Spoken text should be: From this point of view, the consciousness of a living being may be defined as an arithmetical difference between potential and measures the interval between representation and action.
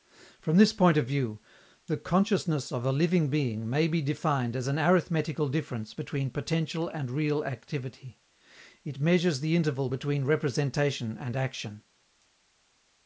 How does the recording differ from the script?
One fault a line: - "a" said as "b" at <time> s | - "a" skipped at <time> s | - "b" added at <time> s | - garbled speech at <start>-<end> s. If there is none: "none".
- "real activity It" added at 7.1 s